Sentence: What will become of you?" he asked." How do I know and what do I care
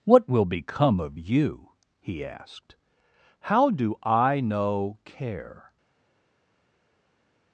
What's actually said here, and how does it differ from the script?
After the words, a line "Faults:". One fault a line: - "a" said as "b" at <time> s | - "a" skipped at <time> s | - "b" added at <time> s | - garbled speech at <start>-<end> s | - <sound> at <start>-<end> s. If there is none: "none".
What will become of you?" he asked." How do I know care
Faults:
- "and what do I" skipped at 5.0 s